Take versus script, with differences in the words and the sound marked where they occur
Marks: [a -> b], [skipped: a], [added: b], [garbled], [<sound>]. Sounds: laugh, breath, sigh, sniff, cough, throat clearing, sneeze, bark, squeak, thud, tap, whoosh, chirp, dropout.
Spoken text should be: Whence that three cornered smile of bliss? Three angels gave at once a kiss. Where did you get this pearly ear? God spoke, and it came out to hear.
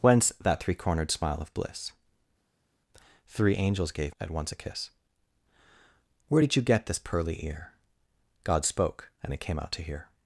Whence that three cornered smile of bliss? Three angels gave at once a kiss. Where did you get this pearly ear? God spoke, and it came out to hear.